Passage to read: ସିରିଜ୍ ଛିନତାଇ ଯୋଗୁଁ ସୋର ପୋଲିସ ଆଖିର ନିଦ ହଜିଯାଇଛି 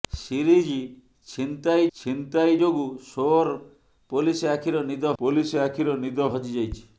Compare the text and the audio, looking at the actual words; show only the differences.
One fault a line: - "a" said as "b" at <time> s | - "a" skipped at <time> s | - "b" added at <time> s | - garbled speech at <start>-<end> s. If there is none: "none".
- "ଛିନତାଇ" added at 1.9 s
- "ପୋଲିସ ଆଖିର ନିଦ" added at 5.2 s